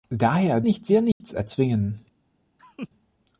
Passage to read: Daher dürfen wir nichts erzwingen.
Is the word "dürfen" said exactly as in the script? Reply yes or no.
no